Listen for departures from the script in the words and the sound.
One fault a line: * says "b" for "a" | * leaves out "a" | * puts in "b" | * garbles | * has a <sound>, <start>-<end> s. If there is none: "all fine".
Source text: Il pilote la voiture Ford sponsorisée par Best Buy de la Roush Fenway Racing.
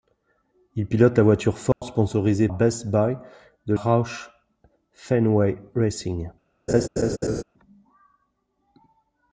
* has a dropout, 1.7-1.8 s
* leaves out "par"
* leaves out "la"
* has a laugh, 6.7-7.4 s